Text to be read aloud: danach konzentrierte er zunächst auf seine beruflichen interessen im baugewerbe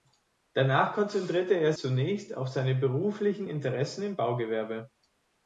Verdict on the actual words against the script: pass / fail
pass